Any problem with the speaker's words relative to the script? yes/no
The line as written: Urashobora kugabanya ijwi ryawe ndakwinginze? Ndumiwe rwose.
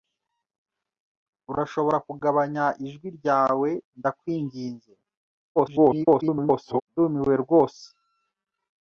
yes